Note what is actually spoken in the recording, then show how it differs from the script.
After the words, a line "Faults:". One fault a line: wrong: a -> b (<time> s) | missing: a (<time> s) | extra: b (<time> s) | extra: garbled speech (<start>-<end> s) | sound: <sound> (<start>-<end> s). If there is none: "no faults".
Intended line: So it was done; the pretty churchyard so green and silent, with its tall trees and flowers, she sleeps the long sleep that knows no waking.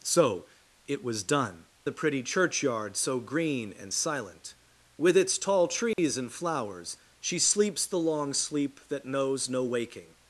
So it was done; the pretty churchyard so green and silent, with its tall trees and flowers, she sleeps the long sleep that knows no waking.
Faults:
sound: dropout (5.9-6.0 s)